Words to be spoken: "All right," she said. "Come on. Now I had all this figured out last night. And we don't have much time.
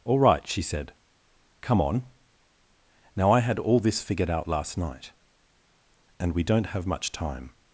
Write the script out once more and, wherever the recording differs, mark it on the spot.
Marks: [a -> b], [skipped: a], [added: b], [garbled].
"All right," she said. "Come on. Now I had all this figured out last night. And we don't have much time.